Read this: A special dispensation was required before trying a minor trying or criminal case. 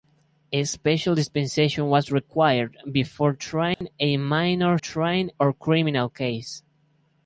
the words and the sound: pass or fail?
fail